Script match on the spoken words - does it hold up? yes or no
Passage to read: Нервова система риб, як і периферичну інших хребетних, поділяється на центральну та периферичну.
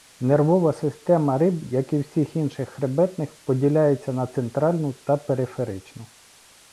no